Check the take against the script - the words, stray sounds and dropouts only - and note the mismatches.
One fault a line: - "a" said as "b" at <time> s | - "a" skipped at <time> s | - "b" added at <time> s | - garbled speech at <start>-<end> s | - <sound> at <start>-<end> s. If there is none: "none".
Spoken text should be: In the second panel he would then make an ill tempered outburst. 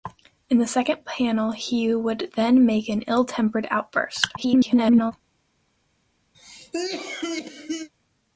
- garbled speech at 4.4-5.1 s
- cough at 6.3-7.9 s